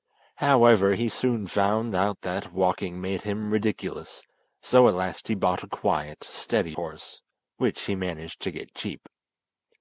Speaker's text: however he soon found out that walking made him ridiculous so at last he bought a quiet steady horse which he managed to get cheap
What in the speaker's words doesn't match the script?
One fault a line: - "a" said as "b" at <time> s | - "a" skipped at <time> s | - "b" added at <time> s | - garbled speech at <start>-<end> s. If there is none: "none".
none